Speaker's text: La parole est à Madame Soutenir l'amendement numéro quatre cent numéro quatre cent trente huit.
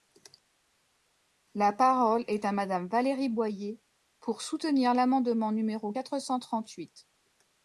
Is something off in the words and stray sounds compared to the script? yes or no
yes